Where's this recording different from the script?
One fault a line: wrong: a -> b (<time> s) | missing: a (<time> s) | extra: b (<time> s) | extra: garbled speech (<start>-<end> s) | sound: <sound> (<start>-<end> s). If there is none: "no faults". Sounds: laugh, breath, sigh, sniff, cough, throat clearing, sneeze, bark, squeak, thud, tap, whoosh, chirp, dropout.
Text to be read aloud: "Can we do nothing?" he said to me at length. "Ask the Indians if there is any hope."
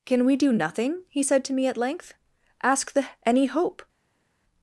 missing: Indians if there is (3.1 s)